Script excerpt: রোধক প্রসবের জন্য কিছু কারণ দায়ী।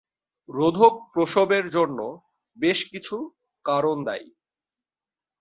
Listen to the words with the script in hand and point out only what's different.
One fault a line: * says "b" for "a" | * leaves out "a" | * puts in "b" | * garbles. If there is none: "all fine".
* puts in "বেশ"